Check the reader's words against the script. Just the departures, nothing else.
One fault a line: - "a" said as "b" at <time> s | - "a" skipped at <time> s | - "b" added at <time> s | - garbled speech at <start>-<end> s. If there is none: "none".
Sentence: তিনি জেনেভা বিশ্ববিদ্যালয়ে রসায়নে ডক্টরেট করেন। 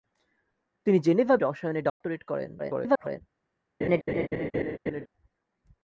- "বিশ্ববিদ্যালয়ে" skipped at 1.4 s
- garbled speech at 2.6-3.2 s